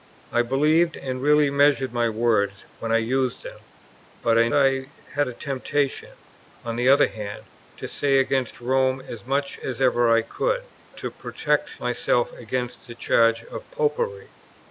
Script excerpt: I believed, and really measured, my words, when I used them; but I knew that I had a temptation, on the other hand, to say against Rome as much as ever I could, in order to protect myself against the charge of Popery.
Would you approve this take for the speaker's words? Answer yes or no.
no